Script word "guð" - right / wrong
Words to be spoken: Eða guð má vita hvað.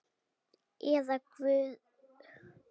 right